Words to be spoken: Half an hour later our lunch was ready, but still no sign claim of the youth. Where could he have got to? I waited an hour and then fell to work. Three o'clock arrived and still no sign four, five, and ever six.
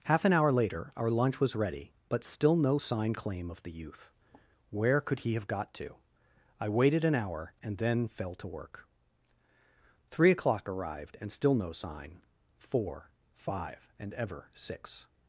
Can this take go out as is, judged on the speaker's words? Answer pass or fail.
pass